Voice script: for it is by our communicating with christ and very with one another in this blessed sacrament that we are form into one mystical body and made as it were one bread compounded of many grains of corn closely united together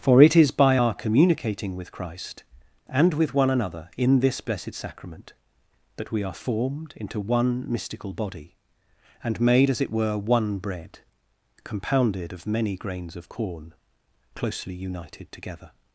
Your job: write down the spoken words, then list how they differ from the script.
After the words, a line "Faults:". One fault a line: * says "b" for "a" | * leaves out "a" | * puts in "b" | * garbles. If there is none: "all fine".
for it is by our communicating with christ and with one another in this blessed sacrament that we are formed into one mystical body and made as it were one bread compounded of many grains of corn closely united together
Faults:
* leaves out "very"
* says "formed" for "form"